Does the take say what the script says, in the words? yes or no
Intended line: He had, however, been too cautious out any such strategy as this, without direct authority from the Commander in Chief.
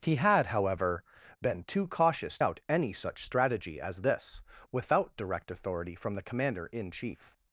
yes